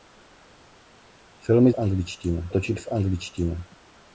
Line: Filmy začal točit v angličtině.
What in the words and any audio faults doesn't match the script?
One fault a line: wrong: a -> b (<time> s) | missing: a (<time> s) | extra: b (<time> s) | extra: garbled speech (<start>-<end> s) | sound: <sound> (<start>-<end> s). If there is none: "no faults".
wrong: začal -> angličtině (1.8 s)